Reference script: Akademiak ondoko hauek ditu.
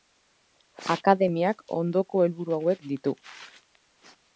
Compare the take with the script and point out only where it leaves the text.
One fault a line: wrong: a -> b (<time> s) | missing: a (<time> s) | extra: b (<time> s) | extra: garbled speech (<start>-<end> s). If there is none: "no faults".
extra: helburu (2.2 s)